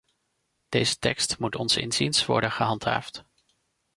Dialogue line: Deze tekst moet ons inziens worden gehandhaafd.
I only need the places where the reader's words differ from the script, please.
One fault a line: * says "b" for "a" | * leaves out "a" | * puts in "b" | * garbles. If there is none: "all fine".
all fine